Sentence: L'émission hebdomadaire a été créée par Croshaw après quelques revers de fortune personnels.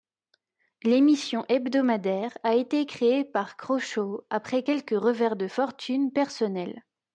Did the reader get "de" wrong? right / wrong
right